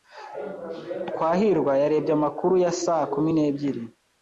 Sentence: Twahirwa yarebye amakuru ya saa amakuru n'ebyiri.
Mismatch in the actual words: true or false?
true